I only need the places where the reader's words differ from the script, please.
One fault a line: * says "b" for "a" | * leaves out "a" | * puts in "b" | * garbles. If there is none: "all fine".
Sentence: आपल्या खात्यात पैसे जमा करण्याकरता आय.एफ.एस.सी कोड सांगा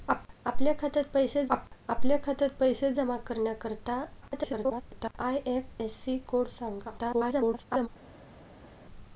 * puts in "आपल्या खात्यात पैसे"
* garbles
* garbles